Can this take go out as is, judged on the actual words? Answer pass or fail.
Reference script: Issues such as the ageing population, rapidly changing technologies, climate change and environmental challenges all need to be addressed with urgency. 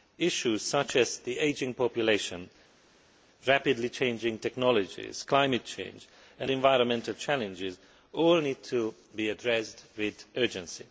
pass